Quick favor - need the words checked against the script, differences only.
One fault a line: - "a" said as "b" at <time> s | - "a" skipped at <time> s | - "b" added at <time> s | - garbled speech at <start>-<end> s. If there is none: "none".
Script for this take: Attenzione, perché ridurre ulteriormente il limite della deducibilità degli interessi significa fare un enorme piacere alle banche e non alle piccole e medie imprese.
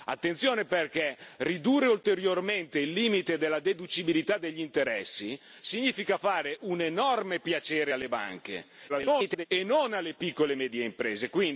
- garbled speech at 8.9-9.5 s